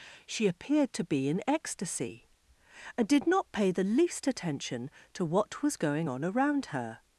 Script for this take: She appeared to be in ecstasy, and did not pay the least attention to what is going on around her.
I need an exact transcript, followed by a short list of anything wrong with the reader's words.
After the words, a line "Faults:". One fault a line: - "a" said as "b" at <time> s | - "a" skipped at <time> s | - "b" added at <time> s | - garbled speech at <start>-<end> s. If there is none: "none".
She appeared to be in ecstasy, and did not pay the least attention to what was going on around her.
Faults:
- "is" said as "was" at 5.6 s